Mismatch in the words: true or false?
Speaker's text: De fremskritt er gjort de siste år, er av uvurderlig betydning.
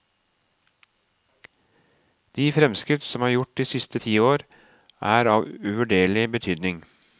true